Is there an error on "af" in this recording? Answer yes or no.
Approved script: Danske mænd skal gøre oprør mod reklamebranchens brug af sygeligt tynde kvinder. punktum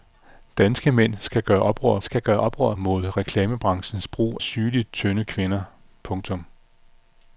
yes